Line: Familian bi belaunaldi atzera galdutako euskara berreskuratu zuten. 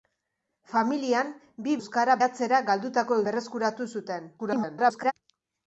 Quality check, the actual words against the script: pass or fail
fail